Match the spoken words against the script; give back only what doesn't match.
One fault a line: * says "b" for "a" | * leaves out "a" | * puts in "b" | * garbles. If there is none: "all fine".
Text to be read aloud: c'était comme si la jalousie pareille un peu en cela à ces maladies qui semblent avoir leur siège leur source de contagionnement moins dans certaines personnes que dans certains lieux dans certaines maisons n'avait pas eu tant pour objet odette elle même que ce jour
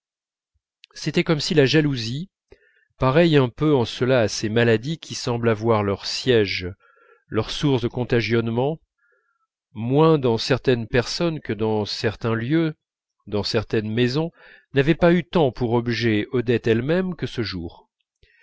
all fine